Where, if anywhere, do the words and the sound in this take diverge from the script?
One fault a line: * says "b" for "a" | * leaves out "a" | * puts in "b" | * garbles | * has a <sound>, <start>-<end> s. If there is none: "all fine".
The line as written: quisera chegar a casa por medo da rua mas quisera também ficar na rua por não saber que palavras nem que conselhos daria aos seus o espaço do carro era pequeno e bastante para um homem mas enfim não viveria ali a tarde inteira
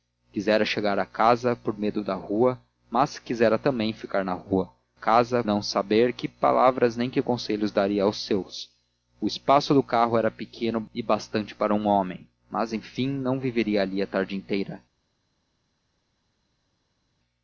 * says "casa" for "por"